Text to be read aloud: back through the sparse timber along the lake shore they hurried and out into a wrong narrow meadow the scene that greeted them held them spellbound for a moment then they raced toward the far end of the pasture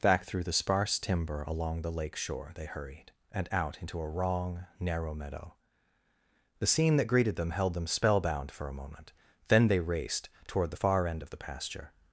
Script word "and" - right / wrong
right